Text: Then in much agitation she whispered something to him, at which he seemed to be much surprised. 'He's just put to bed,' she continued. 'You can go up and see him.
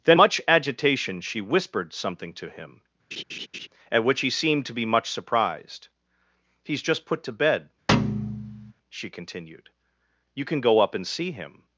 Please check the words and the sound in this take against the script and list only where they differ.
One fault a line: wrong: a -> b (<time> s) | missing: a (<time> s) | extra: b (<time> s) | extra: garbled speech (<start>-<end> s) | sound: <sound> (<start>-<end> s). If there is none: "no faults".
missing: in (0.2 s)
sound: laugh (3.1-3.7 s)
sound: thud (7.9-8.7 s)